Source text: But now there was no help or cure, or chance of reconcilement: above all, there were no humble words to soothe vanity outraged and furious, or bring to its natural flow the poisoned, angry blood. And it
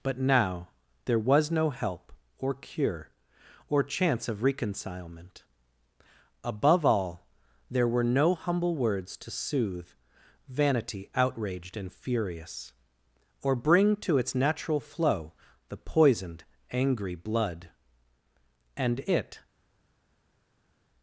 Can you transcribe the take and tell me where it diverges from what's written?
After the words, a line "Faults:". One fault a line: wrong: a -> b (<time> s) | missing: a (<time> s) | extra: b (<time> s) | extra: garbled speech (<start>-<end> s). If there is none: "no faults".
But now there was no help or cure, or chance of reconcilement: above all, there were no humble words to soothe vanity outraged and furious, or bring to its natural flow the poisoned, angry blood. And it
Faults:
no faults